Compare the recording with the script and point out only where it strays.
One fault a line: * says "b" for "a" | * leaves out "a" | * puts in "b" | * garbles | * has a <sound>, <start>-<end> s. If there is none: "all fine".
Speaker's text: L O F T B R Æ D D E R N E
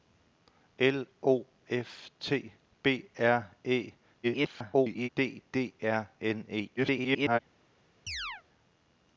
* garbles
* leaves out "E"
* garbles
* has a chirp, 8.1-8.4 s